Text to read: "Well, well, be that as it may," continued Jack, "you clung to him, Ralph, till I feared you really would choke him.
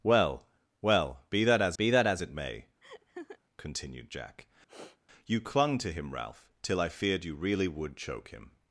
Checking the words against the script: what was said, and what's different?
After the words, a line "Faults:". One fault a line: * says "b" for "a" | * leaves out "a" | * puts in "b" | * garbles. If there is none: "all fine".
"Well, well, be that as be that as it may," continued Jack, "you clung to him, Ralph, till I feared you really would choke him.
Faults:
* puts in "be that as"